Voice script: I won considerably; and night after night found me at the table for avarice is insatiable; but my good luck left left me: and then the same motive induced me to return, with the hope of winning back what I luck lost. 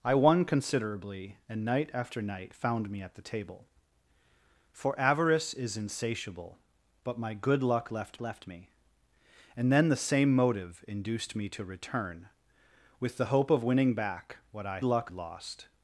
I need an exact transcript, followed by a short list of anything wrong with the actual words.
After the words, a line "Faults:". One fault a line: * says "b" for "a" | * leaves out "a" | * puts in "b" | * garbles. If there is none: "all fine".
I won considerably; and night after night found me at the table for avarice is insatiable; but my good luck left left me: and then the same motive induced me to return, with the hope of winning back what I luck lost.
Faults:
all fine